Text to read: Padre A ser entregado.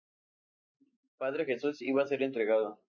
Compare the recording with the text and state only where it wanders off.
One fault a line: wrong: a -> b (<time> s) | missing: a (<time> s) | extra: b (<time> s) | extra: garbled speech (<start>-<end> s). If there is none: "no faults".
extra: Jesús iba (1.4 s)